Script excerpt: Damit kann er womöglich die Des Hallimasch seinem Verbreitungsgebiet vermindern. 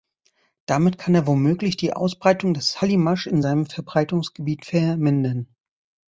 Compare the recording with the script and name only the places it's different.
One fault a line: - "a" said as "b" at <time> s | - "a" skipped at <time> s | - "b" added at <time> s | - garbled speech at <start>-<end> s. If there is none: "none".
- "Ausbreitung" added at 1.9 s
- "in" added at 3.3 s